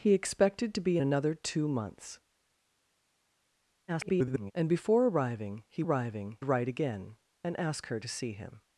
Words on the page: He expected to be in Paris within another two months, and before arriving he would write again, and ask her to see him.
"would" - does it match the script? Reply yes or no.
no